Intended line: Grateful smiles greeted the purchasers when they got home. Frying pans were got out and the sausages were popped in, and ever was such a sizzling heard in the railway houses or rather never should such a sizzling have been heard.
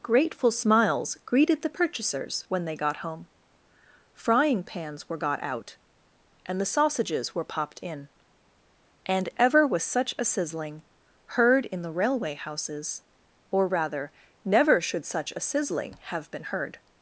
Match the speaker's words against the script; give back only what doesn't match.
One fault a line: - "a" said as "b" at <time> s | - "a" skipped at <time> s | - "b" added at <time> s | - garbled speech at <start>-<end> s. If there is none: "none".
none